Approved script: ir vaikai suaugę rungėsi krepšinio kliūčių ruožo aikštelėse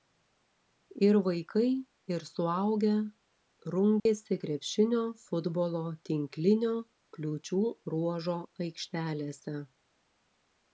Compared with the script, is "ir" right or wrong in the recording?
right